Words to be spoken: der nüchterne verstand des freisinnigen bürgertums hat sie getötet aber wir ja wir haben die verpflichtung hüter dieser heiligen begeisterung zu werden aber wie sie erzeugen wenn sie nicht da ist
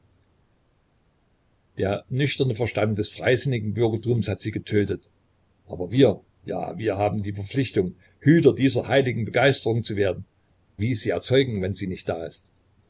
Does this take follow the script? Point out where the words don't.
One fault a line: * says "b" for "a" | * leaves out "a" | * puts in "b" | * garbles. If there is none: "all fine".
* leaves out "aber"